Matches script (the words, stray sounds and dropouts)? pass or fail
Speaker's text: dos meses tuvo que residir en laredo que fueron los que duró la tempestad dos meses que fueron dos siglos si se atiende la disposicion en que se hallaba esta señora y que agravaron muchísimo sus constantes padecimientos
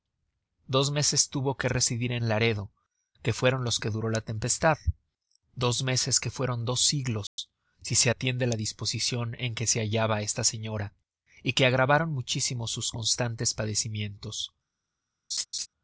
fail